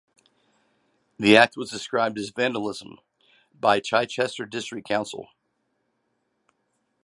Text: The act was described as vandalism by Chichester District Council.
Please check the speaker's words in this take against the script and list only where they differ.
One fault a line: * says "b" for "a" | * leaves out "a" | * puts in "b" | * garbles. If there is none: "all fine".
all fine